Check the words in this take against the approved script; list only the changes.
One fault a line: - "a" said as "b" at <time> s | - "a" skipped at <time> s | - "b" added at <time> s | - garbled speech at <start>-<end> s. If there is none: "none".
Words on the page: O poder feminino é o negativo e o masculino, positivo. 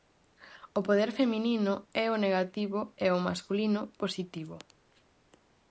none